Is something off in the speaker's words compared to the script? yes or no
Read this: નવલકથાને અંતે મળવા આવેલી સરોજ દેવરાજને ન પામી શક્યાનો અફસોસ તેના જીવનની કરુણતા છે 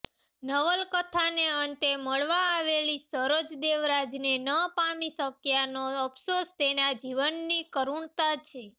no